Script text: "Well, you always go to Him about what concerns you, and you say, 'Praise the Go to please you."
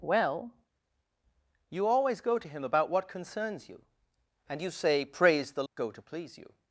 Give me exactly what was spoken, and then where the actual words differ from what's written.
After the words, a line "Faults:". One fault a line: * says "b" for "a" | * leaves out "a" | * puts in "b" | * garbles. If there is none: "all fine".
"Well, you always go to Him about what concerns you, and you say, 'Praise the Go to please you."
Faults:
all fine